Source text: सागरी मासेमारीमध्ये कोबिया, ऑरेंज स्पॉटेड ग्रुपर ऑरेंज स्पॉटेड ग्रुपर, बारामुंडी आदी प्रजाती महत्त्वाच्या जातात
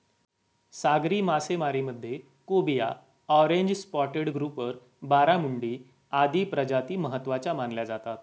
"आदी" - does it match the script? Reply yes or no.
yes